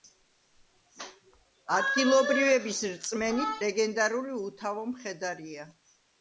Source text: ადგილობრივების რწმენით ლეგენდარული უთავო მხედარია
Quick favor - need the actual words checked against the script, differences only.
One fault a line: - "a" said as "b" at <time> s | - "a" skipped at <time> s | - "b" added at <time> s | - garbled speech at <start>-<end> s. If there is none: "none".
none